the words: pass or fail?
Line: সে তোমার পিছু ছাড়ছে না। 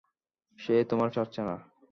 fail